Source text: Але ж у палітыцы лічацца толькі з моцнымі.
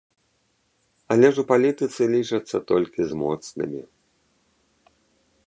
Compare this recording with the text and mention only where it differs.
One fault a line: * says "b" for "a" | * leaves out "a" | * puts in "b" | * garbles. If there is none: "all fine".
all fine